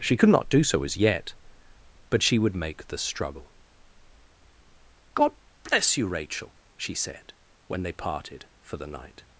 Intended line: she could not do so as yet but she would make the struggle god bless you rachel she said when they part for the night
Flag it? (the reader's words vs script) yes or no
yes